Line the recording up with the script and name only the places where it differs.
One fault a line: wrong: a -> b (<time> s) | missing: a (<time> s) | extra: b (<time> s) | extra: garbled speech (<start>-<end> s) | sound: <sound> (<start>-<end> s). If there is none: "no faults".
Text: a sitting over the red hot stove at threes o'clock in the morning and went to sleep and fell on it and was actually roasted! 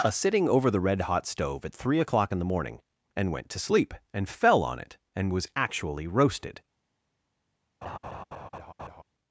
wrong: threes -> three (1.7 s)
sound: laugh (7.8-9.0 s)